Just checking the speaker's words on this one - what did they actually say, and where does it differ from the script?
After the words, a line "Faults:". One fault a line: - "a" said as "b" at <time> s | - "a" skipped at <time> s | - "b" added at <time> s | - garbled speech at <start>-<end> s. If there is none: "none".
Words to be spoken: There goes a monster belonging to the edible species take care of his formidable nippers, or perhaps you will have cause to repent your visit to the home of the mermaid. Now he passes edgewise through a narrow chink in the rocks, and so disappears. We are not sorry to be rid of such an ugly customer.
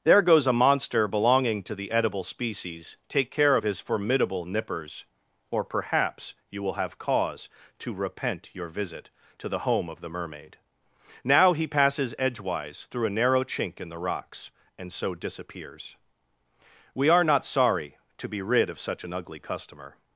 There goes a monster belonging to the edible species take care of his formidable nippers, or perhaps you will have cause to repent your visit to the home of the mermaid. Now he passes edgewise through a narrow chink in the rocks, and so disappears. We are not sorry to be rid of such an ugly customer.
Faults:
none